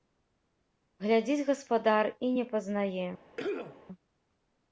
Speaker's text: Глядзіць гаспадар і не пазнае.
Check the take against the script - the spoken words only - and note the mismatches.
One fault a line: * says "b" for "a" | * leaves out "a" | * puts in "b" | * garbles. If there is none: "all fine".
all fine